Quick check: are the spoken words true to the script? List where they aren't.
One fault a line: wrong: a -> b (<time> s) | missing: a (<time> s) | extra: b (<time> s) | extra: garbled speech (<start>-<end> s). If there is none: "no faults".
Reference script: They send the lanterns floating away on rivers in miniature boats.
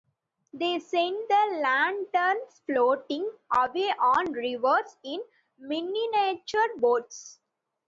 no faults